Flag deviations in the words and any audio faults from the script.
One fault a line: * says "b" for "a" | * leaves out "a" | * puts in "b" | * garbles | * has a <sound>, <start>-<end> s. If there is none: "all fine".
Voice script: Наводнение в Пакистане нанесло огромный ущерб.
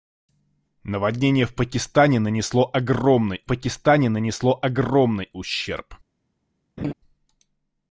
* puts in "Пакистане нанесло огромный"
* has a laugh, 6.8-6.9 s